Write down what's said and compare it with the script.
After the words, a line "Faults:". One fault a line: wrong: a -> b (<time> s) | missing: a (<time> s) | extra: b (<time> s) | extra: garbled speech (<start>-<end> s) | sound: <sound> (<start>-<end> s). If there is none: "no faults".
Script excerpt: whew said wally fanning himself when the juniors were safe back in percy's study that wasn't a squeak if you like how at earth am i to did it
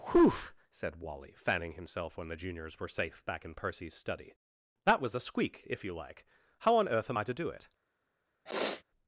whew said wally fanning himself when the juniors were safe back in percy's study that was a squeak if you like how on earth am i to do it
Faults:
wrong: wasn't -> was (5.0 s)
wrong: at -> on (6.8 s)
wrong: did -> do (7.3 s)
sound: sniff (8.5-8.8 s)